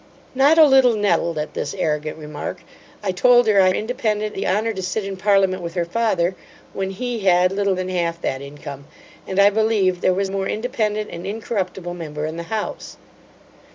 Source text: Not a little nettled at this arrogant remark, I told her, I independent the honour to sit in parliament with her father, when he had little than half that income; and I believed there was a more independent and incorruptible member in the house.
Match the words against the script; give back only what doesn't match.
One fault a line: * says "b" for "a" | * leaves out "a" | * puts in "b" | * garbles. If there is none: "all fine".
all fine